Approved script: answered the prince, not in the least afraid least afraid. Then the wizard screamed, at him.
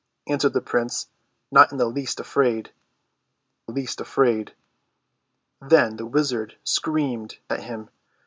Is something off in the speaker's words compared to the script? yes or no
no